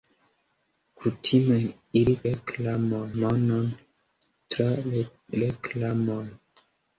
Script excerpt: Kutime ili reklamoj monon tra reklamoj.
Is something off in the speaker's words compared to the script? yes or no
no